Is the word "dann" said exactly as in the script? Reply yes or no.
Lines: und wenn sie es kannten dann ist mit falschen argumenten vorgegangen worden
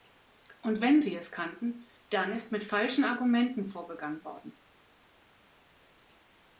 yes